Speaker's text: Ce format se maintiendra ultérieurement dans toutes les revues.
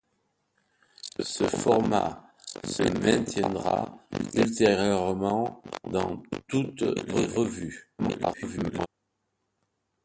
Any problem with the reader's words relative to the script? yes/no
yes